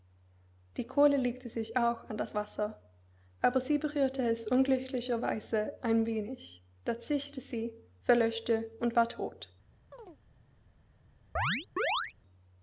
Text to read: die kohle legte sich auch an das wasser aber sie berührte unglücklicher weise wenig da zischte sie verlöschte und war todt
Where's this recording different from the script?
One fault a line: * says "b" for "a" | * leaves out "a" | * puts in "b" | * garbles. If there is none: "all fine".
* puts in "es"
* puts in "ein"